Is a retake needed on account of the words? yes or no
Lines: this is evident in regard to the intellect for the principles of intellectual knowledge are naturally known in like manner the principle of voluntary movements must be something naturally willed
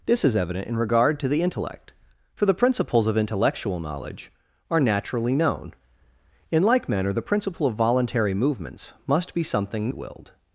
yes